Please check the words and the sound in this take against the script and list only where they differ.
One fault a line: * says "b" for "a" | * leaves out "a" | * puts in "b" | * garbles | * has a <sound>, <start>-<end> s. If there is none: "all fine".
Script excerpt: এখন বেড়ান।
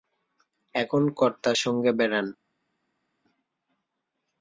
* puts in "কর্তার সঙ্গে"